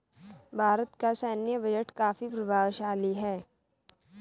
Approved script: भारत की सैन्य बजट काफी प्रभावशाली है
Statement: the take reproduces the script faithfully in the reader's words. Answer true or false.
false